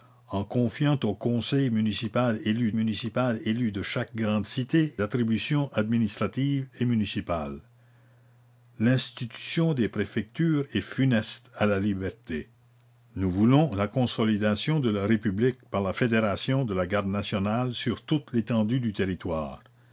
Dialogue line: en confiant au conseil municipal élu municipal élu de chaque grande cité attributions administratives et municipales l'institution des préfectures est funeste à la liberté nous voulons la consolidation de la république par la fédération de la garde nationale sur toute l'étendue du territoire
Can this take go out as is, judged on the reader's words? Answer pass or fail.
pass